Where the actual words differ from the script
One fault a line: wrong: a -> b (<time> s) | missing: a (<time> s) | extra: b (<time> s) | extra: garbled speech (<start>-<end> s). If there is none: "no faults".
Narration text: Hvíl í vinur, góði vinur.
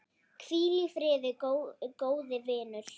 wrong: vinur -> friði (1.0 s)